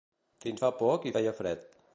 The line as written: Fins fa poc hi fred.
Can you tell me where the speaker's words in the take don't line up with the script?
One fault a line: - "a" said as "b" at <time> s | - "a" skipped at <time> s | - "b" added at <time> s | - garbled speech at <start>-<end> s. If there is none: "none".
- "feia" added at 1.1 s